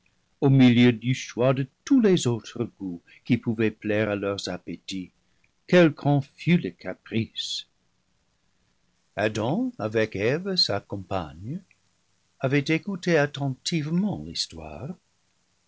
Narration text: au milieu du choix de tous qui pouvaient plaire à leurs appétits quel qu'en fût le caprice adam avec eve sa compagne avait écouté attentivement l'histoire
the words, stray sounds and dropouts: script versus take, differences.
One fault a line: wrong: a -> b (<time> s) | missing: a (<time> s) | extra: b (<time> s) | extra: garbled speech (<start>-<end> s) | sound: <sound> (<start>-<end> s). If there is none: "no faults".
extra: les autres goûts (2.0 s)